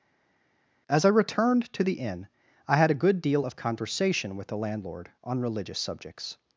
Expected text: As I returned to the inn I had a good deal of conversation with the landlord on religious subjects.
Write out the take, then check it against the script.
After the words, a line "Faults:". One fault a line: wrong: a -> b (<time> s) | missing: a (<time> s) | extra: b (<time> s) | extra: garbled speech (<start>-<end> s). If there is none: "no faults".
As I returned to the inn I had a good deal of conversation with the landlord on religious subjects.
Faults:
no faults